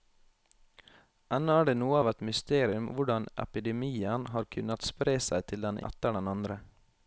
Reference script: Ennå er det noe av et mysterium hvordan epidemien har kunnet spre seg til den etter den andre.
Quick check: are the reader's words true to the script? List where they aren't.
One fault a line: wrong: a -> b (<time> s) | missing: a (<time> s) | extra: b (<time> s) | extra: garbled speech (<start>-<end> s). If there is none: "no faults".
no faults